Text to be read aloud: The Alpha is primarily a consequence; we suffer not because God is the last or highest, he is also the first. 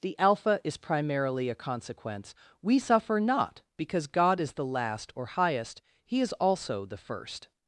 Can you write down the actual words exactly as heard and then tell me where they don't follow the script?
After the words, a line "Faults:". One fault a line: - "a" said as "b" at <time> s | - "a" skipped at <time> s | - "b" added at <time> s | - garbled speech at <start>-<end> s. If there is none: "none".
The Alpha is primarily a consequence; we suffer not because God is the last or highest, he is also the first.
Faults:
none